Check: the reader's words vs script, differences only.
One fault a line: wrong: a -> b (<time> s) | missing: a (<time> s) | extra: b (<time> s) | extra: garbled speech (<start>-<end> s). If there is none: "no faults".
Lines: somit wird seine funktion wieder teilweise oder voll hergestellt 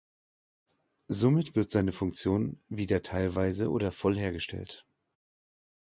no faults